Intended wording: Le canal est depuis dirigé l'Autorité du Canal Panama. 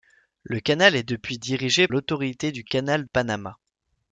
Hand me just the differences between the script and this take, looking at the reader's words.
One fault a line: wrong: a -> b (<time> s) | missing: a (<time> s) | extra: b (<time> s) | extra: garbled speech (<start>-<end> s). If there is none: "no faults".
no faults